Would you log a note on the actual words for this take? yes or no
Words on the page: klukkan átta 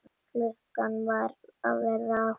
yes